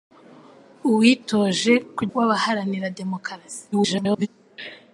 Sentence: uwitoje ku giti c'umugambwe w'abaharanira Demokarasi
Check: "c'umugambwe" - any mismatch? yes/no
yes